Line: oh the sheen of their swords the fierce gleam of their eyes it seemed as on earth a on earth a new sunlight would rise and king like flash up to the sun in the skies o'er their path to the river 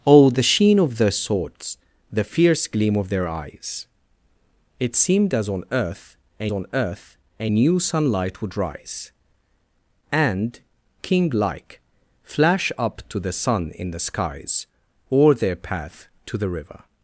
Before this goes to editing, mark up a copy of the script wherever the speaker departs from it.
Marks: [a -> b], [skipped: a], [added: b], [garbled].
oh the sheen of their swords the fierce gleam of their eyes it seemed as on earth a on earth a new sunlight would rise and king like flash up to the sun in the skies o'er their path to the river